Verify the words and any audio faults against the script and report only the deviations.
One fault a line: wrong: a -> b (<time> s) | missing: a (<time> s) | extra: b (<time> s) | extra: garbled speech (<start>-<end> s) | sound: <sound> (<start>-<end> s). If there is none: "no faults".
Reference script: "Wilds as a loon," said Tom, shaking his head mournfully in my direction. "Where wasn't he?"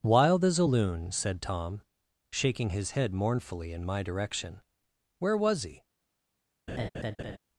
wrong: Wilds -> Wild (0.0 s)
wrong: wasn't -> was (5.4 s)
sound: laugh (6.7-7.4 s)